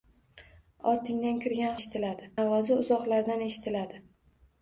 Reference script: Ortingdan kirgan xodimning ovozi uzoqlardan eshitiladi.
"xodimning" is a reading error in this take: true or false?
true